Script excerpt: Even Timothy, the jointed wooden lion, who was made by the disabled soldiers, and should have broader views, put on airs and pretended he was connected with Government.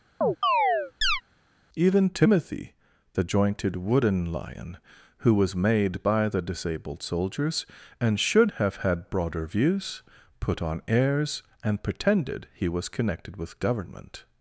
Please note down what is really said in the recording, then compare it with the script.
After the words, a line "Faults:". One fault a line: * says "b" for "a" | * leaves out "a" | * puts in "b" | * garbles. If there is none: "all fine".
Even Timothy, the jointed wooden lion, who was made by the disabled soldiers, and should have had broader views, put on airs and pretended he was connected with Government.
Faults:
* puts in "had"